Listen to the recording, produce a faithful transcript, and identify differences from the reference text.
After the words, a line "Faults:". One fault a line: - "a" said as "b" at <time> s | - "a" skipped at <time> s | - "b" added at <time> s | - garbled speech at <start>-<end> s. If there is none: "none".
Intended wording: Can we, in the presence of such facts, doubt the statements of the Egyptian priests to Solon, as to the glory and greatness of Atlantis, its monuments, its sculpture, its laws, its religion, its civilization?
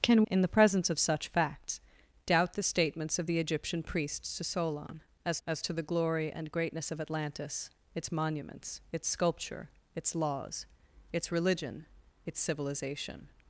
Can in the presence of such facts, doubt the statements of the Egyptian priests to Solon, as as to the glory and greatness of Atlantis, its monuments, its sculpture, its laws, its religion, its civilization?
Faults:
- "we" skipped at 0.2 s
- "as" added at 5.5 s